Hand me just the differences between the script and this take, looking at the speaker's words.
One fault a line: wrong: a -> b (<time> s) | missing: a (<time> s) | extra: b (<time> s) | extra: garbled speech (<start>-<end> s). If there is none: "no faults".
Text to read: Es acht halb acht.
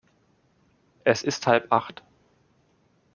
wrong: acht -> ist (1.2 s)